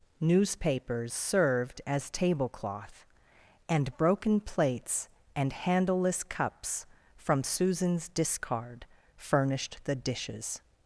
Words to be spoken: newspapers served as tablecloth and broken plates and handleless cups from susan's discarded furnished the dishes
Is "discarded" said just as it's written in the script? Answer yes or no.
no